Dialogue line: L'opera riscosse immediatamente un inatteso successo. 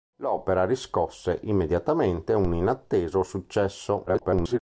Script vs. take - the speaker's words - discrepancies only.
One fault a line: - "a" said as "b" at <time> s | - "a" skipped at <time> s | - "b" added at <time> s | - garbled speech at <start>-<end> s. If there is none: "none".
- garbled speech at 4.1-4.6 s